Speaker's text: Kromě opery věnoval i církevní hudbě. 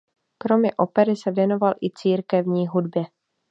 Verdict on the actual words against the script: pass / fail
fail